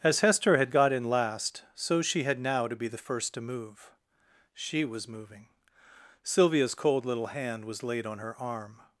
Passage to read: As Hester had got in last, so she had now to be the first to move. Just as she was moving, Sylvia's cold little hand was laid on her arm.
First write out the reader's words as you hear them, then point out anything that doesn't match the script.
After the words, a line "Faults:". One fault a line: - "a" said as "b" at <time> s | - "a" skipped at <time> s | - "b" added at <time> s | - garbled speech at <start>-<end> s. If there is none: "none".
As Hester had got in last, so she had now to be the first to move. she was moving, Sylvia's cold little hand was laid on her arm.
Faults:
- "Just as" skipped at 3.9 s